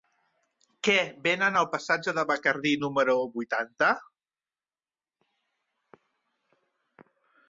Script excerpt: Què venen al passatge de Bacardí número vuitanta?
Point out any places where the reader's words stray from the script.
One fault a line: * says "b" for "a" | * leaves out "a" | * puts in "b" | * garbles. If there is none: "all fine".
all fine